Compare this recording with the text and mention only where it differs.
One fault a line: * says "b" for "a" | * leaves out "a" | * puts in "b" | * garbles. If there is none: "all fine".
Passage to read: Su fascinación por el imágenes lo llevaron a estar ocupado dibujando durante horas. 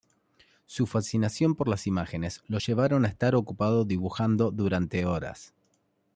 * says "las" for "el"